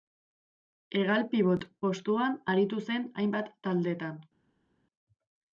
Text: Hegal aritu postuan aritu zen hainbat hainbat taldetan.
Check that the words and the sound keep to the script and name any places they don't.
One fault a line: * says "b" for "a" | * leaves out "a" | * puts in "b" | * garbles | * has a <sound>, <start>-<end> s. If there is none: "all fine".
* says "pibot" for "aritu"
* leaves out "hainbat"